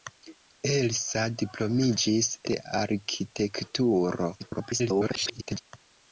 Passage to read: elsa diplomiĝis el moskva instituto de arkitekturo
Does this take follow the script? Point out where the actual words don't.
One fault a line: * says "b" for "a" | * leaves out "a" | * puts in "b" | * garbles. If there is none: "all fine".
* leaves out "el moskva instituto"
* garbles